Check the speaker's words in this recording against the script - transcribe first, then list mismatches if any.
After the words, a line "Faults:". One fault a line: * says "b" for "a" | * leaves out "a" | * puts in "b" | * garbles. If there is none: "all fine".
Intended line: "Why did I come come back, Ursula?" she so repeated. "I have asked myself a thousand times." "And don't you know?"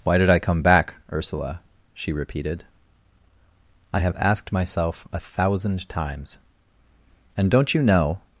"Why did I come back, Ursula?" she repeated. "I have asked myself a thousand times." "And don't you know?"
Faults:
* leaves out "come"
* leaves out "so"